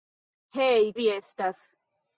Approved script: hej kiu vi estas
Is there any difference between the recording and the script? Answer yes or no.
yes